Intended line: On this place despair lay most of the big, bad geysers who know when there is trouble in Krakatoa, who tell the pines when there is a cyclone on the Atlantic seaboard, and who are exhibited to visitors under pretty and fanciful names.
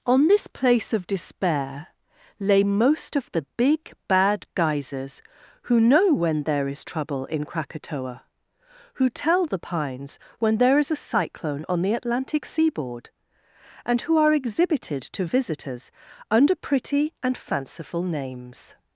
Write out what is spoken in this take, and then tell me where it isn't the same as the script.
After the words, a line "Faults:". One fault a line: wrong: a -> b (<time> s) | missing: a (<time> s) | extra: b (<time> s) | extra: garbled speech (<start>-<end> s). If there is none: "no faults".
On this place of despair lay most of the big, bad geysers who know when there is trouble in Krakatoa, who tell the pines when there is a cyclone on the Atlantic seaboard, and who are exhibited to visitors under pretty and fanciful names.
Faults:
extra: of (0.9 s)